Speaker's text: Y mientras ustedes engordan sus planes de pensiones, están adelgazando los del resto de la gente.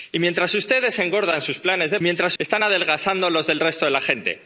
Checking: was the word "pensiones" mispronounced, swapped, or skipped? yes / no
yes